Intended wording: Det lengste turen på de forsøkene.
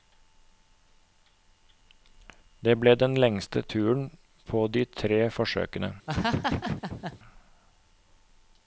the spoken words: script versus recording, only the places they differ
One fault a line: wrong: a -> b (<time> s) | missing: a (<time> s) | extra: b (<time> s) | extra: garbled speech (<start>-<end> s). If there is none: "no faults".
extra: ble den (2.8 s)
extra: tre (5.0 s)